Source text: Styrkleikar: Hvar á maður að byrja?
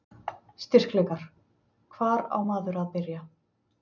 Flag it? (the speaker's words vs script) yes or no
no